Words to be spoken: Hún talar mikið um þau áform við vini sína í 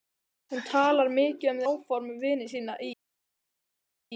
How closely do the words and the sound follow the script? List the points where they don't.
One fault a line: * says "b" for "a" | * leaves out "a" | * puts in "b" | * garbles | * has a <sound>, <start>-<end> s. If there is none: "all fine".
* leaves out "þau"